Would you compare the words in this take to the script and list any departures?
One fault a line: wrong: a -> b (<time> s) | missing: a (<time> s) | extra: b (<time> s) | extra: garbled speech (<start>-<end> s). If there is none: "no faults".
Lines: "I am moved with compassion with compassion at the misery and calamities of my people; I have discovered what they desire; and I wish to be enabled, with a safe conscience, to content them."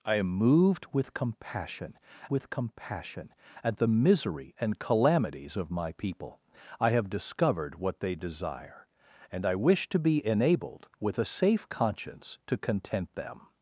no faults